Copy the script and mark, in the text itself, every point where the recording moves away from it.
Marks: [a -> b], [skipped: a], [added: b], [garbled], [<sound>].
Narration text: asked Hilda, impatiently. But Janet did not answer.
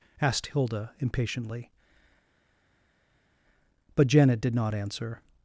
asked Hilda, impatiently. But Janet did not answer.